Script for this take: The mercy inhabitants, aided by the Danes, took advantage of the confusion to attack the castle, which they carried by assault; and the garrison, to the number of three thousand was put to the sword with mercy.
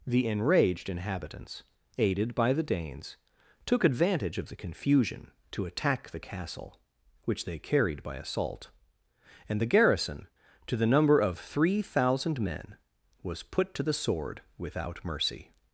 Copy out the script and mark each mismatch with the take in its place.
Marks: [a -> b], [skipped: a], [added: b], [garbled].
The [mercy -> enraged] inhabitants, aided by the Danes, took advantage of the confusion to attack the castle, which they carried by assault; and the garrison, to the number of three thousand [added: men] was put to the sword [with -> without] mercy.